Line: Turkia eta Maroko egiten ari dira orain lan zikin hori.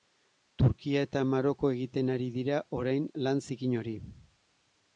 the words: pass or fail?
pass